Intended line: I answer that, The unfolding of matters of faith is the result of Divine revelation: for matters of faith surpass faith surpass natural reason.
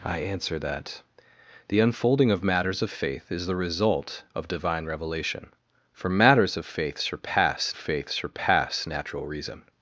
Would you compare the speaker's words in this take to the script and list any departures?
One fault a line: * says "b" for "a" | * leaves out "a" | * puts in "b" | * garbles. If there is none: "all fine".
all fine